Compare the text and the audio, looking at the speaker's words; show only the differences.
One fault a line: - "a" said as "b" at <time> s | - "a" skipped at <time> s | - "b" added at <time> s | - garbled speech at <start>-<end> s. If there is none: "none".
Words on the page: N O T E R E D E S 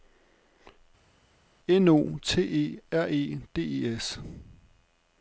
none